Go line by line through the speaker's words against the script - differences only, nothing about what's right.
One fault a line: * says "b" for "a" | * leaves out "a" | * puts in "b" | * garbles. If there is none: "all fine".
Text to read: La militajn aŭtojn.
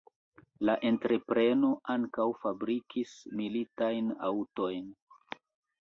* puts in "entrepreno ankaŭ fabrikis"